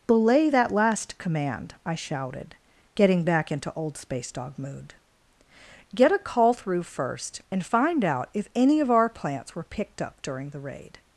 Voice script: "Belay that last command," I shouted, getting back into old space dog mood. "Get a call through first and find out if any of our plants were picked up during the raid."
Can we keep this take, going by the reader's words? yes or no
yes